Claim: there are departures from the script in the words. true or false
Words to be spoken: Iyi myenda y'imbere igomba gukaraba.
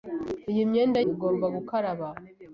true